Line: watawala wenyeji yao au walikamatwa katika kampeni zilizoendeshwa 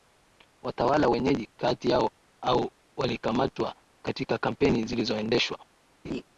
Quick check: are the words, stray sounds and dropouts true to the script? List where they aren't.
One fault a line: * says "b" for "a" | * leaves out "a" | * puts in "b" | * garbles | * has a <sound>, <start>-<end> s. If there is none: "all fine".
* puts in "kati"
* has a laugh, 6.0-6.2 s